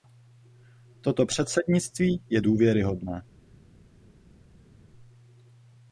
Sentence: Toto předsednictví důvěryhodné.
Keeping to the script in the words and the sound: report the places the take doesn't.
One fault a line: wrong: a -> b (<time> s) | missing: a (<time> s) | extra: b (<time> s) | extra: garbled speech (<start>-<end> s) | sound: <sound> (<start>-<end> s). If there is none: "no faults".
extra: je (2.3 s)